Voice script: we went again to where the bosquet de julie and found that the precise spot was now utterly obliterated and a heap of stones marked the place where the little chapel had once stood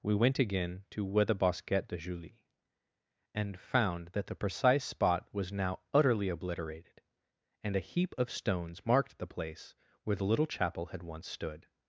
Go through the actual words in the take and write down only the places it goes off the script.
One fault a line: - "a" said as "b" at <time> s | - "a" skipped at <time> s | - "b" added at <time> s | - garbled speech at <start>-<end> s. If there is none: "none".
none